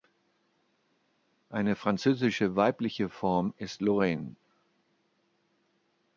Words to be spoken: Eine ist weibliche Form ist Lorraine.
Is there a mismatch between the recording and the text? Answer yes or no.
yes